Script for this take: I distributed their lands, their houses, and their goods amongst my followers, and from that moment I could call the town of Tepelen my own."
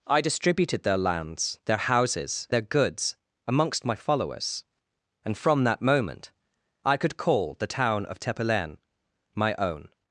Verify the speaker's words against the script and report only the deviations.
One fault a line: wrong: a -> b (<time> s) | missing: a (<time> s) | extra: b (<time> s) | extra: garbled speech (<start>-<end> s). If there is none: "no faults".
missing: and (2.5 s)